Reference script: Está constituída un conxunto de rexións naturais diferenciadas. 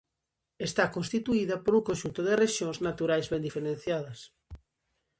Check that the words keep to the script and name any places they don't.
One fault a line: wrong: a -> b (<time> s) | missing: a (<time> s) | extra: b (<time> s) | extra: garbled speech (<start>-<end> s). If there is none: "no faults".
extra: por (1.6 s)
extra: ben (3.3 s)